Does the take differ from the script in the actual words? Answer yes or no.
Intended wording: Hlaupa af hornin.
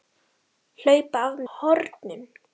no